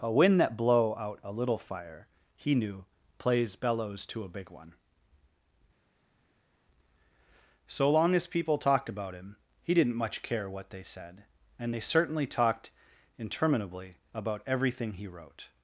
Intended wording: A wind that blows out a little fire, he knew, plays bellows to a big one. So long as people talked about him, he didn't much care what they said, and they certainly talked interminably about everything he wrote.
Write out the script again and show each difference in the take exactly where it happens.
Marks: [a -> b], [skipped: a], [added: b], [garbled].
A wind that [blows -> blow] out a little fire, he knew, plays bellows to a big one. So long as people talked about him, he didn't much care what they said, and they certainly talked interminably about everything he wrote.